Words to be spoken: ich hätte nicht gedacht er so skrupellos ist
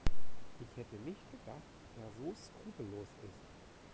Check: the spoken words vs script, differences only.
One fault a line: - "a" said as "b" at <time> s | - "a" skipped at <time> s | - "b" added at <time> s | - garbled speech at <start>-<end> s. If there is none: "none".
none